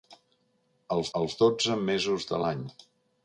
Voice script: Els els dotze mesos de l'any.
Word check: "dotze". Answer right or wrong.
right